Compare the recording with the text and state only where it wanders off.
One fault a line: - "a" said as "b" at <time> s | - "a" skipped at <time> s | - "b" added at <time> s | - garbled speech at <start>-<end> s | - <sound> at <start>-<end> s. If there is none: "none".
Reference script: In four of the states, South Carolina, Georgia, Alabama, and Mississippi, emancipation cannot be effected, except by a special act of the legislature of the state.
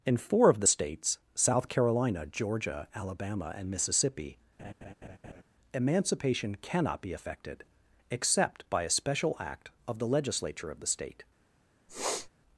- laugh at 4.6-5.4 s
- sniff at 11.9-12.3 s